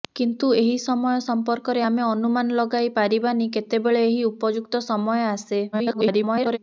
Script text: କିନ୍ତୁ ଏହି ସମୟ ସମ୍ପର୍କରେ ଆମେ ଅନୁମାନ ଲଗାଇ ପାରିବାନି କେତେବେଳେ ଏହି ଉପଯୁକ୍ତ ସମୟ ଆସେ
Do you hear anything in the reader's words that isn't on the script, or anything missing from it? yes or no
yes